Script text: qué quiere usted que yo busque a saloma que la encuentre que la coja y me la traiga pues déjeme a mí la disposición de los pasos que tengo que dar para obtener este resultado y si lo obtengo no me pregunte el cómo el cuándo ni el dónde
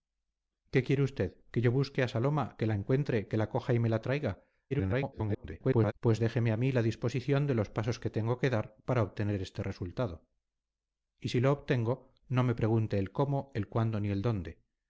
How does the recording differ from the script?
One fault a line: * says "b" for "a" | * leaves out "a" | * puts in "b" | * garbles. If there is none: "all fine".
* garbles